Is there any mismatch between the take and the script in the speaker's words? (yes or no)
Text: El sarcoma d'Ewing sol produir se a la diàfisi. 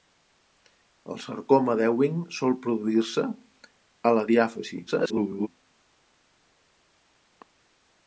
yes